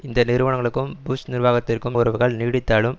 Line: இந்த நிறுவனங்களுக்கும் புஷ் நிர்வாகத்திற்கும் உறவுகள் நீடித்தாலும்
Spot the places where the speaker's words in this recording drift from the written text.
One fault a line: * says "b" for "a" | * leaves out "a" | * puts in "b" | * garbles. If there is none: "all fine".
all fine